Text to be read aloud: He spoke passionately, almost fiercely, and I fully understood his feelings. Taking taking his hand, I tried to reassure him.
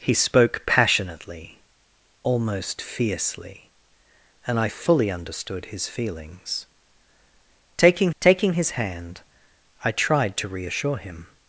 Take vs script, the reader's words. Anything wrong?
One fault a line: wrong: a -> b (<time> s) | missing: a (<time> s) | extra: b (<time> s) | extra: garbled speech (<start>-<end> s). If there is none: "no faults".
no faults